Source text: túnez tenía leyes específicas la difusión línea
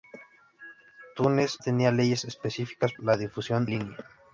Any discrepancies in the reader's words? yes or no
no